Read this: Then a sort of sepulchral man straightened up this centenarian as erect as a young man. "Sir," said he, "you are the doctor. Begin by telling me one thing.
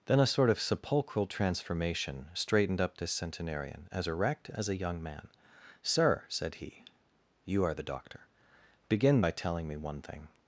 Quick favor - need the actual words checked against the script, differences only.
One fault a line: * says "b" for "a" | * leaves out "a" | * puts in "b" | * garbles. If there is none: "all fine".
* says "transformation" for "man"